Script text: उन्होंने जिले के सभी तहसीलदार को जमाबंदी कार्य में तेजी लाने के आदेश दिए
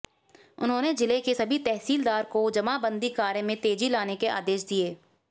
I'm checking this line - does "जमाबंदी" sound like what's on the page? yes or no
yes